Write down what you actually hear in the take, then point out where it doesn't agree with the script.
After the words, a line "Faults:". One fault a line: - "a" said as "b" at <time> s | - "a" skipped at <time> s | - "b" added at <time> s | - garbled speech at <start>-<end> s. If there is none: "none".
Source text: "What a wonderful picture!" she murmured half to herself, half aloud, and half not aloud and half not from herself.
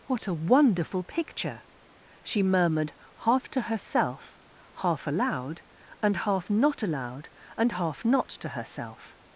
"What a wonderful picture!" she murmured half to herself, half aloud, and half not aloud and half not to herself.
Faults:
- "from" said as "to" at 8.3 s